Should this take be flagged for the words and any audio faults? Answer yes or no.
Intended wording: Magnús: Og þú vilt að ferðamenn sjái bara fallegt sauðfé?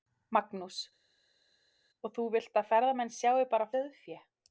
yes